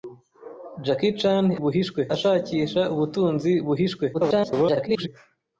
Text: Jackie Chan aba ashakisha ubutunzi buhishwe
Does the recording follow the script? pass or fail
fail